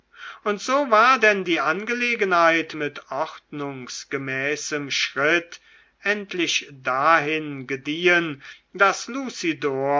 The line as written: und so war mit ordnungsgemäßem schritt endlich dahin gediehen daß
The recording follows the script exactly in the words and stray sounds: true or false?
false